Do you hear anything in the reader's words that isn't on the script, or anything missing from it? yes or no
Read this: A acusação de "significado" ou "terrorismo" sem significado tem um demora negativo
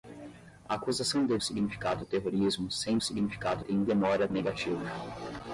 no